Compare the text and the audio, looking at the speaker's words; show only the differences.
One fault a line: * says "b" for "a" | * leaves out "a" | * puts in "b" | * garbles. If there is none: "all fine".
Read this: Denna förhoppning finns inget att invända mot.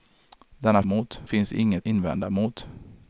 * says "mot" for "förhoppning"
* leaves out "att"